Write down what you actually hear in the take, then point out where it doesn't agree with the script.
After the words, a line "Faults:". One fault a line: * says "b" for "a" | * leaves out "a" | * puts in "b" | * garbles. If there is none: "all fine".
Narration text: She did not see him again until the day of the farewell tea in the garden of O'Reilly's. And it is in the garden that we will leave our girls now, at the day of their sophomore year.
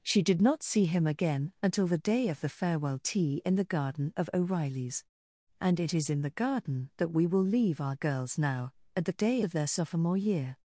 She did not see him again until the day of the farewell tea in the garden of O'Reilly's. And it is in the garden that we will leave our girls now, at the day of their sophomore year.
Faults:
all fine